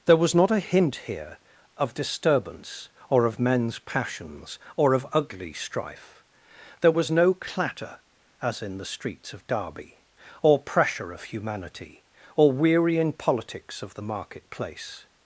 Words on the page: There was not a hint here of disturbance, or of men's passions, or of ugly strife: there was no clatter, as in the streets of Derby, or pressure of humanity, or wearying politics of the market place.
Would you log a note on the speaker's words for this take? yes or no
no